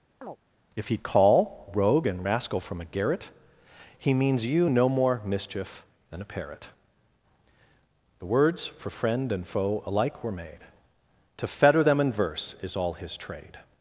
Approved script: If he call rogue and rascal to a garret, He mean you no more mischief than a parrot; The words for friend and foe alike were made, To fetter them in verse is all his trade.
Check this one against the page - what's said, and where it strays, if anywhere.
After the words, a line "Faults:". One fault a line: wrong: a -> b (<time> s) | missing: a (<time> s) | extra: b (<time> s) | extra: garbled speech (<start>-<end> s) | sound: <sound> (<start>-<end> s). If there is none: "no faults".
If he call rogue and rascal from a garret, He means you no more mischief than a parrot; The words for friend and foe alike were made, To fetter them in verse is all his trade.
Faults:
sound: chirp (0.2-0.4 s)
wrong: to -> from (2.6 s)
wrong: mean -> means (4.1 s)